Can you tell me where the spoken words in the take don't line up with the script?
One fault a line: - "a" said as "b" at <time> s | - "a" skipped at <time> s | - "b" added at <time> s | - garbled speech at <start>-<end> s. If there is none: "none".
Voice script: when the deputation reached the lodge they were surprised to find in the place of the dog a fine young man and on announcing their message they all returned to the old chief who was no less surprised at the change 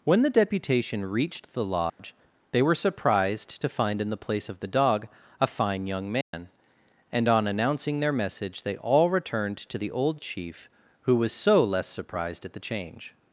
- "no" said as "so" at 11.3 s